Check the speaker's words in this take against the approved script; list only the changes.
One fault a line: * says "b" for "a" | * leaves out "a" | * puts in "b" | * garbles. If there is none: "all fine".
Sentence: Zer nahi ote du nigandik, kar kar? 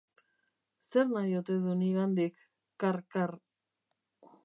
all fine